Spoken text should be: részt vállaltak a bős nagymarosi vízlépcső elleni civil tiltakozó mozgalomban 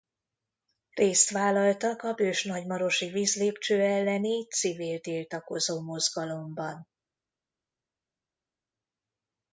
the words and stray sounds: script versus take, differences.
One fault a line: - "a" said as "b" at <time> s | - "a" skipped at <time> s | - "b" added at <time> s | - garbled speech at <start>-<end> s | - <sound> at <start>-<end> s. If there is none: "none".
none